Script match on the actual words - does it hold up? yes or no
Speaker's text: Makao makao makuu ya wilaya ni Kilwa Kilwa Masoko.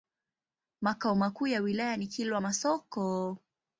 no